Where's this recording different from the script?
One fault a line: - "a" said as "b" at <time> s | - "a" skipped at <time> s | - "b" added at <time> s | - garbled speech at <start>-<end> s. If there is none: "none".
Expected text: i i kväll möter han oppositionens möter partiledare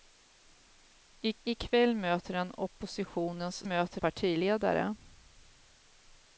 none